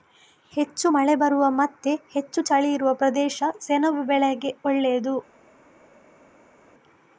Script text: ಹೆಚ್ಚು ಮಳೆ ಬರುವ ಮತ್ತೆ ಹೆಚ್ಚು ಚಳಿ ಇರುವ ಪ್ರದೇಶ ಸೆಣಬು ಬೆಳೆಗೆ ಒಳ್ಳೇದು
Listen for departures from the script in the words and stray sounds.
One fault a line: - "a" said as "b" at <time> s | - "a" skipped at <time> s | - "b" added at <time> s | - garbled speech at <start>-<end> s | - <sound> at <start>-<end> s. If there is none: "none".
none